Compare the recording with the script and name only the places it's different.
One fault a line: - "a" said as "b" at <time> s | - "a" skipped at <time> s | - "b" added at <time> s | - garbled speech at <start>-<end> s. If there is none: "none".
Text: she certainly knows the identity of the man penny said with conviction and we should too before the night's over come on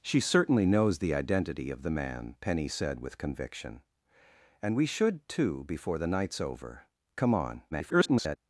- garbled speech at 7.7-8.4 s